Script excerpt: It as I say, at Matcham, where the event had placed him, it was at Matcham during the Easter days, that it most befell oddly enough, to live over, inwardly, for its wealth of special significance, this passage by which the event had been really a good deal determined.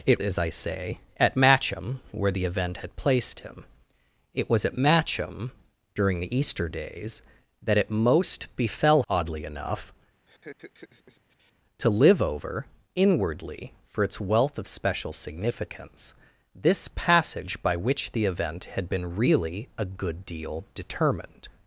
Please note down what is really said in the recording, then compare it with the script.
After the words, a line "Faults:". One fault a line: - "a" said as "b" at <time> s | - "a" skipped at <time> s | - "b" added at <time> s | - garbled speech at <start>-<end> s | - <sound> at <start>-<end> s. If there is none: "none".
It as I say, at Matcham, where the event had placed him, it was at Matcham during the Easter days, that it most befell oddly enough, to live over, inwardly, for its wealth of special significance, this passage by which the event had been really a good deal determined.
Faults:
- laugh at 10.3-11.5 s